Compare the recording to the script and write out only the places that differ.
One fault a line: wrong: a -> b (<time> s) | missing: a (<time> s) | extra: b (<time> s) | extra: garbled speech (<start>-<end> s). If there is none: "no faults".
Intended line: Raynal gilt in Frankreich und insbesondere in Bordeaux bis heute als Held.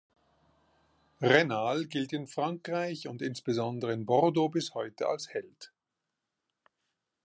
no faults